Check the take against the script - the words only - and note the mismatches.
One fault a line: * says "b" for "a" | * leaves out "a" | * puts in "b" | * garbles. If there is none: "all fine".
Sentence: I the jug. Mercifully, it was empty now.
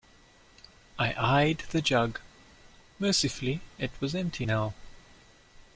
* puts in "eyed"